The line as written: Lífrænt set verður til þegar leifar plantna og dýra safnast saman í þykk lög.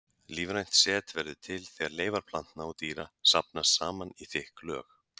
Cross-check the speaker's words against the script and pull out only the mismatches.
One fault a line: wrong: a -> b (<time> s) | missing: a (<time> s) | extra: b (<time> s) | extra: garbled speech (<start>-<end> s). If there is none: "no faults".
no faults